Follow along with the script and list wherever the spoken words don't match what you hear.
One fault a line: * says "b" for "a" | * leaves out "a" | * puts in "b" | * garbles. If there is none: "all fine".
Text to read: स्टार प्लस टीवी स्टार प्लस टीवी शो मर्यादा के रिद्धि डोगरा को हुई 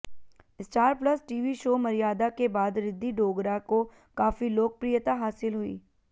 * leaves out "स्टार प्लस टीवी"
* puts in "बाद"
* puts in "काफी लोकप्रियता हासिल"